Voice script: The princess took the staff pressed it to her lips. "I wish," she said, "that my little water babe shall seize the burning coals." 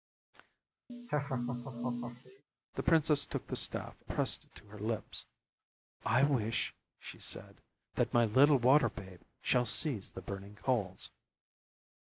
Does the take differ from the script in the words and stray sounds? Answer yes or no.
yes